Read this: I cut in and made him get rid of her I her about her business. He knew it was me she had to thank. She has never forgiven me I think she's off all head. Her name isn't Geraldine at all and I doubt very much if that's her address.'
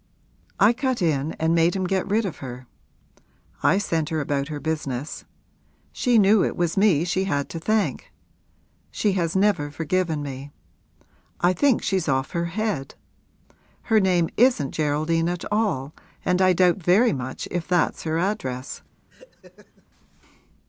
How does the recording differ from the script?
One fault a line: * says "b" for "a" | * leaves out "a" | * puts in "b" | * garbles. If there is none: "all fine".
* puts in "sent"
* says "She" for "He"
* says "her" for "all"